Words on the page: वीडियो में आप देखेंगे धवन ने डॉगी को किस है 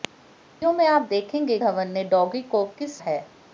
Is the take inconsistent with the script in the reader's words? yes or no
no